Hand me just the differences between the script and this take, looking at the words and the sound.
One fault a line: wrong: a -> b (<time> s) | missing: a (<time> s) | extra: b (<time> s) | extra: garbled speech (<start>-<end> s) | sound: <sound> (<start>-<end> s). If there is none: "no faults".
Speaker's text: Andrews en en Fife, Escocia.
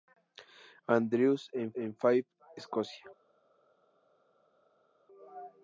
no faults